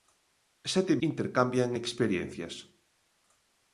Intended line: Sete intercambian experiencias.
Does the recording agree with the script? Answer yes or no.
yes